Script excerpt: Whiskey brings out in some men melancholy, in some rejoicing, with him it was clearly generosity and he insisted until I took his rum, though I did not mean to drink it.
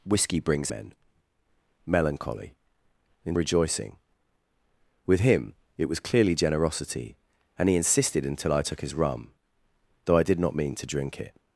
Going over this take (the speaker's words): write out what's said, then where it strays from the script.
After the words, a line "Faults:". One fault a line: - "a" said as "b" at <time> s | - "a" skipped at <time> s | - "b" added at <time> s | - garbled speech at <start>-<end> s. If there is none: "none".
Whiskey brings men melancholy, in rejoicing, with him it was clearly generosity and he insisted until I took his rum, though I did not mean to drink it.
Faults:
- "out in some" skipped at 0.7 s
- "some" skipped at 3.3 s